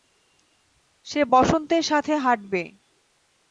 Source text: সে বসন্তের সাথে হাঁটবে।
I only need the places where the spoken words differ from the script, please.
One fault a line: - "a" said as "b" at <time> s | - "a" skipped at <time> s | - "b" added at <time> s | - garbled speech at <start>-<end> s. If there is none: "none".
none